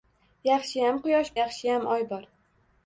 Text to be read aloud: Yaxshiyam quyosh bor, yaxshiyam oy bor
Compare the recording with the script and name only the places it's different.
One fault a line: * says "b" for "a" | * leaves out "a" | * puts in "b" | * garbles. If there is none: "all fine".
* leaves out "bor"